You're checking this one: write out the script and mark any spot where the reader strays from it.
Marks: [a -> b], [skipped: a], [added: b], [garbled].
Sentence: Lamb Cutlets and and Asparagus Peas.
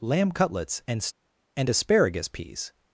Lamb Cutlets and and Asparagus Peas.